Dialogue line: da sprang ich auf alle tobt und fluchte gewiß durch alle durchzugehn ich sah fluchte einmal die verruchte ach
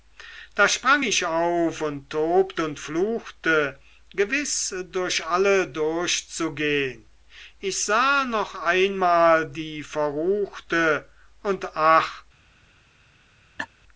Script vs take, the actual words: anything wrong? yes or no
yes